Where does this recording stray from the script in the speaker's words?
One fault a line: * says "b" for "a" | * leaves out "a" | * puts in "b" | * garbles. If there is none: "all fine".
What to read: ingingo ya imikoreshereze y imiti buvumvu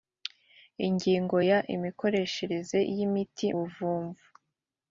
all fine